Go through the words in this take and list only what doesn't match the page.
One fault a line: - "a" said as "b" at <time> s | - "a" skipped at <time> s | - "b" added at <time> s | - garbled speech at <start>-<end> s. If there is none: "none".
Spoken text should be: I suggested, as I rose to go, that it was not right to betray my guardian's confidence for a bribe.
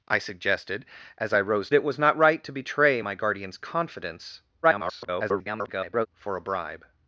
- "to go that" skipped at 1.7 s
- garbled speech at 4.6-6.1 s